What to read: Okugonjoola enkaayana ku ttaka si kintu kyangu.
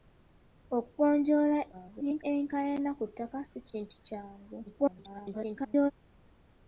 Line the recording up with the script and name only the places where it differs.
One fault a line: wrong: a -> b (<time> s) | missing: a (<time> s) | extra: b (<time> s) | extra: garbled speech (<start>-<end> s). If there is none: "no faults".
extra: garbled speech (1.7-2.2 s)
extra: garbled speech (4.7-5.9 s)